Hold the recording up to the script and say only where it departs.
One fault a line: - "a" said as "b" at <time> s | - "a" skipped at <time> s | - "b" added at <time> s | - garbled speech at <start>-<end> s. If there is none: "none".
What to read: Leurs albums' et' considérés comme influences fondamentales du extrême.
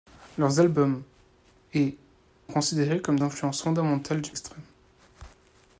none